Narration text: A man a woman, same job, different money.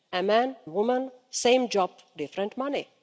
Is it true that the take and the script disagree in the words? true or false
false